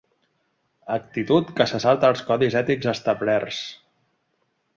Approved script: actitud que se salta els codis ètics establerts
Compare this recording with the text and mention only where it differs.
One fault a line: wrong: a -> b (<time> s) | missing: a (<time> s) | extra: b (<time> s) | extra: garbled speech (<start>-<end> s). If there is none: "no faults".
no faults